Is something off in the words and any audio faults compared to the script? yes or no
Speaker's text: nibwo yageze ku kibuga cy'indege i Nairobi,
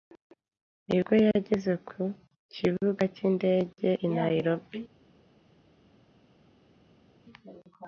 no